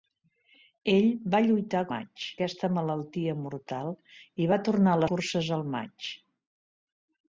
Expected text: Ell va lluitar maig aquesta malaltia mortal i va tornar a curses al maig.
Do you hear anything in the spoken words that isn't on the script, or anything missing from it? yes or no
no